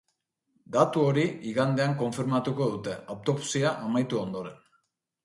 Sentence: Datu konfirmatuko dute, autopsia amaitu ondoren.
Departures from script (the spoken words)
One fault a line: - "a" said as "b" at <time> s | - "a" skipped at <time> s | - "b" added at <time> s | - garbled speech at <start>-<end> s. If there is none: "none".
- "hori igandean" added at 1.1 s